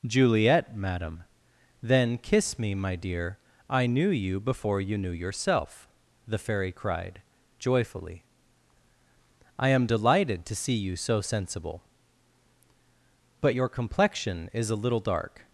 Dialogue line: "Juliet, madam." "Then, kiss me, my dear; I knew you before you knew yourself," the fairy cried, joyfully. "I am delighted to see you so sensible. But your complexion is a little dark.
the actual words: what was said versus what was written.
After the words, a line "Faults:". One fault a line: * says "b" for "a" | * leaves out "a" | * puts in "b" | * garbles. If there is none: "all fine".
"Juliet, madam." "Then, kiss me, my dear; I knew you before you knew yourself," the fairy cried, joyfully. "I am delighted to see you so sensible. But your complexion is a little dark.
Faults:
all fine